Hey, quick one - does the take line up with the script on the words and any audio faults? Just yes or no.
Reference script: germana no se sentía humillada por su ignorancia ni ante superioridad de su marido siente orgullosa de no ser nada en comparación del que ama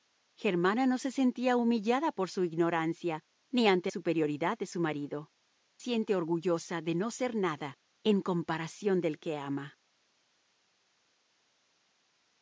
yes